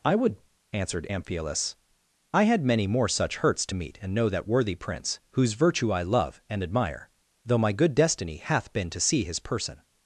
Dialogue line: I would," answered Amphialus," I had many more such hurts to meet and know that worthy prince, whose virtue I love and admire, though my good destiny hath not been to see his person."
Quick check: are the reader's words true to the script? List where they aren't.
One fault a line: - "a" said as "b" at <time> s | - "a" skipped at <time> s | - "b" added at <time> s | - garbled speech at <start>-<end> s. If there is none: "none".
- "not" skipped at 8.7 s